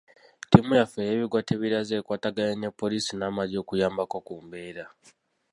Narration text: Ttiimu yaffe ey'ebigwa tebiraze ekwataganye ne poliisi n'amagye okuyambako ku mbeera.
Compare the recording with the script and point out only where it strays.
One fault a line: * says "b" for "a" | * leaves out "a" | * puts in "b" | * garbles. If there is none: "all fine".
all fine